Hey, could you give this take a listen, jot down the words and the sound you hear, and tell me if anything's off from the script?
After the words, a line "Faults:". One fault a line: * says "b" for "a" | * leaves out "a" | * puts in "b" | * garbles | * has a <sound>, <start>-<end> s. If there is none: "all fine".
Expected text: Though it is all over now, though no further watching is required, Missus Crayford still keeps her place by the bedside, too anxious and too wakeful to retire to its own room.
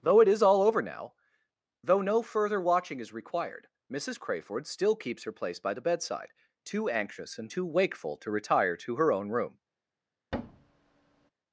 Though it is all over now, though no further watching is required, Missus Crayford still keeps her place by the bedside, too anxious and too wakeful to retire to her own room.
Faults:
* says "her" for "its"
* has a thud, 10.3-11.3 s